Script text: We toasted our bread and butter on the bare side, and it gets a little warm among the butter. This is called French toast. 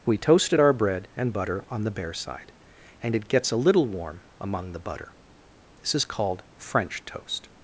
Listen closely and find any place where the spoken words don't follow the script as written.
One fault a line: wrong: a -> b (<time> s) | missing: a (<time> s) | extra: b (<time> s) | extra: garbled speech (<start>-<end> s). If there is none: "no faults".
no faults